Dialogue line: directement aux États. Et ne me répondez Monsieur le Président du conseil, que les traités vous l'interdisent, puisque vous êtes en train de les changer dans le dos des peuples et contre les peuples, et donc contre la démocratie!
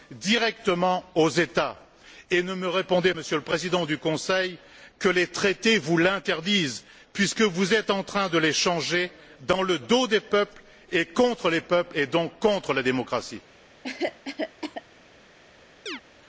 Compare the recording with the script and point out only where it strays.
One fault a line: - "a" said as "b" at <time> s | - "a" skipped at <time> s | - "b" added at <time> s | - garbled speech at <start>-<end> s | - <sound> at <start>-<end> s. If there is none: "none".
- cough at 13.8-14.8 s
- chirp at 15.9-16.0 s